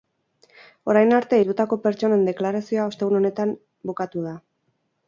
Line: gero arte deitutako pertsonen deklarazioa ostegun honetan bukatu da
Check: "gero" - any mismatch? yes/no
yes